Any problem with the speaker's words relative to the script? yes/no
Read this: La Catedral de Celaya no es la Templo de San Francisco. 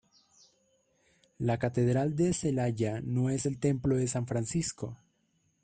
yes